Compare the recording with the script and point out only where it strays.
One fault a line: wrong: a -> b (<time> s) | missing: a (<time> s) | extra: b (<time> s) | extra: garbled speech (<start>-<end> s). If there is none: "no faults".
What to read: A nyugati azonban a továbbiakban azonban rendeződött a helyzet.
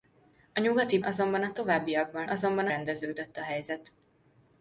no faults